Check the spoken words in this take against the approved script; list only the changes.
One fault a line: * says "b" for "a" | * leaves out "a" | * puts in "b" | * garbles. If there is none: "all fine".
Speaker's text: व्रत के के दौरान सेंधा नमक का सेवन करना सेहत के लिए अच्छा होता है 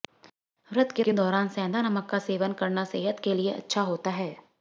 all fine